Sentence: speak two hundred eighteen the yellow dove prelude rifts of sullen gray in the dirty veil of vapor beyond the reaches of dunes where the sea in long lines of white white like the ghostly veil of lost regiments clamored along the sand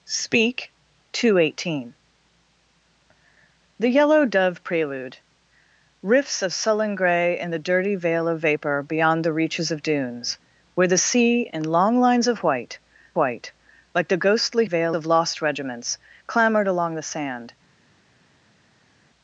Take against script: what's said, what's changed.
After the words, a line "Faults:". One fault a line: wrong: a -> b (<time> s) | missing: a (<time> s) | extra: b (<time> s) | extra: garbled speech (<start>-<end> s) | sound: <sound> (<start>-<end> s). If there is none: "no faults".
speak two hundred eighteen the yellow dove prelude rifts of sullen gray in the dirty veil of vapor beyond the reaches of dunes where the sea in long lines of white white like the ghostly veil of lost regiments clamored along the sand
Faults:
no faults